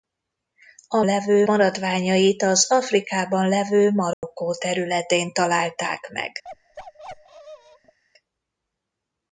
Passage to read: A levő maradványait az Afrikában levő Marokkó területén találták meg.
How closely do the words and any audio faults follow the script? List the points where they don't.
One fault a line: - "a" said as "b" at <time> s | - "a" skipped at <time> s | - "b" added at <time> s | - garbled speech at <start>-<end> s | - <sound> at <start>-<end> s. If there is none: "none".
- dropout at 4.1-4.2 s
- bark at 6.4-8.0 s